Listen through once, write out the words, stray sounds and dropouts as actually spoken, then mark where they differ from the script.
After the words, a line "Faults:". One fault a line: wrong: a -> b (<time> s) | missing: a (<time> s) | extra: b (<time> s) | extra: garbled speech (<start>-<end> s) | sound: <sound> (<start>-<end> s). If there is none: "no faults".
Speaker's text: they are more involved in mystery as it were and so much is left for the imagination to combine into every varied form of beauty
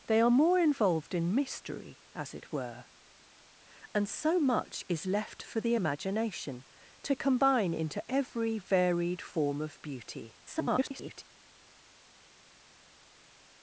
they are more involved in mystery as it were and so much is left for the imagination to combine into every varied form of beauty [garbled]
Faults:
extra: garbled speech (10.5-11.2 s)